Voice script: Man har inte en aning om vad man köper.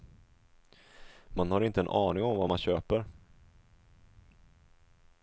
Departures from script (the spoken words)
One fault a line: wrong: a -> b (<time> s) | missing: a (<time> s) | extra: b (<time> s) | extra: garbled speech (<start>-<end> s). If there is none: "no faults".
no faults